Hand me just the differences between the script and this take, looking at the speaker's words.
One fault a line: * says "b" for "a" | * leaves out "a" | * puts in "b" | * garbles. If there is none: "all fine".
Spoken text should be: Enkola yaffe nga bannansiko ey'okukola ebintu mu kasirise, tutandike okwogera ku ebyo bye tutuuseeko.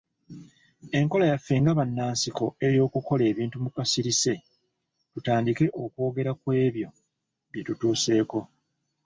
all fine